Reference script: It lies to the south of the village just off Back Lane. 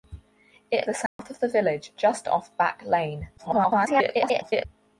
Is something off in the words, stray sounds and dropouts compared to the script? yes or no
yes